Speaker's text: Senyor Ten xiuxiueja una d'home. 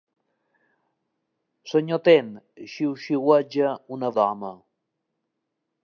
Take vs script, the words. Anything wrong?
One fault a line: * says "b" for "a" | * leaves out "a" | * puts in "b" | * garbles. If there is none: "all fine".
all fine